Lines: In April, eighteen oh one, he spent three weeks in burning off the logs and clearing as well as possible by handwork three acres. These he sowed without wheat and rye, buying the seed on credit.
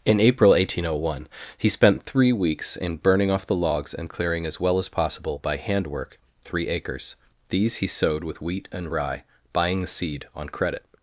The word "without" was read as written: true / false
false